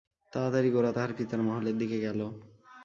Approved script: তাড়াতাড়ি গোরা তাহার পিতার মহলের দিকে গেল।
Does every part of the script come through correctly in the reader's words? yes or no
yes